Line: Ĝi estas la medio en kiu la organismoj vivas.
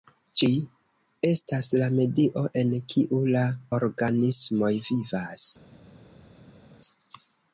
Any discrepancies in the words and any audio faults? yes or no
no